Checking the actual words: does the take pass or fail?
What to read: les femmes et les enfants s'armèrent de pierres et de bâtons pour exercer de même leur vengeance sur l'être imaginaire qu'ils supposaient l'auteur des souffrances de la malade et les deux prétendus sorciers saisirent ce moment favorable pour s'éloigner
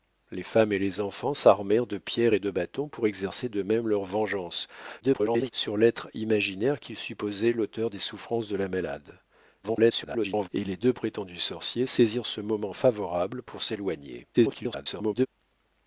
fail